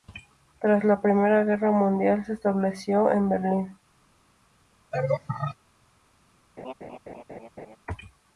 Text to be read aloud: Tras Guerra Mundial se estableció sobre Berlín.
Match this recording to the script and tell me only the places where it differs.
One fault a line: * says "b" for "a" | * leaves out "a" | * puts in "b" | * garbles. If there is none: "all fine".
* puts in "la Primera"
* says "en" for "sobre"